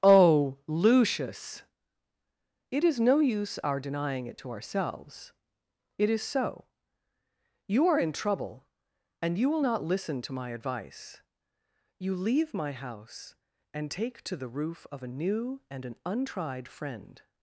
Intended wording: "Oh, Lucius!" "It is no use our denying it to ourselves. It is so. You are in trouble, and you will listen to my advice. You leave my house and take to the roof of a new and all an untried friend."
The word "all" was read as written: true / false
false